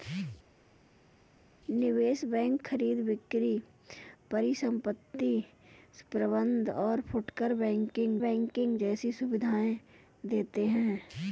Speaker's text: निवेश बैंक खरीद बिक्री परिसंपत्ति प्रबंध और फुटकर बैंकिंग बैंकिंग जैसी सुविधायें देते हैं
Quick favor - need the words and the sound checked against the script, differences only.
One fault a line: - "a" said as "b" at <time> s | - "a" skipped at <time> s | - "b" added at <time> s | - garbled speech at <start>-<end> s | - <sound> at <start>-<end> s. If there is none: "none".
none